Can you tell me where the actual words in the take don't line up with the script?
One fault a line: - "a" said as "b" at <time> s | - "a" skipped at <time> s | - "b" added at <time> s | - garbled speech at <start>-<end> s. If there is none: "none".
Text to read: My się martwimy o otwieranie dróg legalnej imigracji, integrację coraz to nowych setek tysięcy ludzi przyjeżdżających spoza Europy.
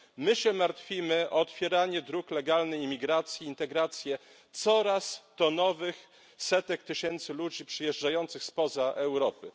none